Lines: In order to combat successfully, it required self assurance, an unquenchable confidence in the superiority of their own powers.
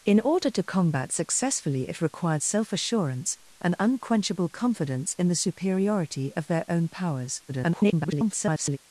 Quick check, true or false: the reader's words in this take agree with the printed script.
false